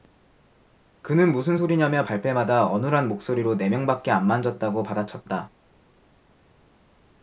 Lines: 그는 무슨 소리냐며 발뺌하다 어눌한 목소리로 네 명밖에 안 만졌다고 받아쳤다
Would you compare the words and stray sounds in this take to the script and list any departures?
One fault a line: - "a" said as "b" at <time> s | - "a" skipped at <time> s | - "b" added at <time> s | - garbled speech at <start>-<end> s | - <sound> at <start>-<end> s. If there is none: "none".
none